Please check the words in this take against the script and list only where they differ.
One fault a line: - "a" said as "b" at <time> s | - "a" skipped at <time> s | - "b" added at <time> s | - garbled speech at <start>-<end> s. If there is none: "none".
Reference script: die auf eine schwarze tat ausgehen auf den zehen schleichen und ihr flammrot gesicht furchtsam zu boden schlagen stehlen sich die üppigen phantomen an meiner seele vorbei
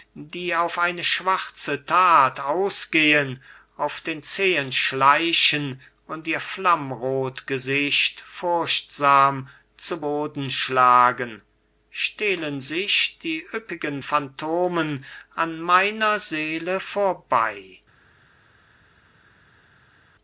none